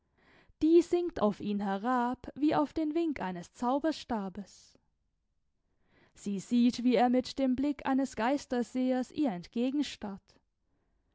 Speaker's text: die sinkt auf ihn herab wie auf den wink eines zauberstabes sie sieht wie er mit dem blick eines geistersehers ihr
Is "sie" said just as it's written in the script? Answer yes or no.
yes